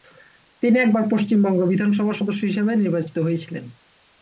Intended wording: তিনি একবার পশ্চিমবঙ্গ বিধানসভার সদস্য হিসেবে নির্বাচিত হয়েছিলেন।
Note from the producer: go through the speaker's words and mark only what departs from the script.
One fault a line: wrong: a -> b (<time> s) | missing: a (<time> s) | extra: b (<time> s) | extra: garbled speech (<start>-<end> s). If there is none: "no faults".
no faults